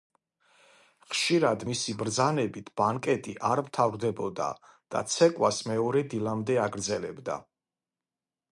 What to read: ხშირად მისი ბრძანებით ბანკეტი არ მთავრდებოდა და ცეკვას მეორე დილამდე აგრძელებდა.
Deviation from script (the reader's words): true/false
false